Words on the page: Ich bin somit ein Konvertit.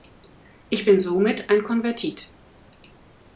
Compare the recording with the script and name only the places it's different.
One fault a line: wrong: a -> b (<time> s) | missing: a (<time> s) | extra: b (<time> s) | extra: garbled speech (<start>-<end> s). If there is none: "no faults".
no faults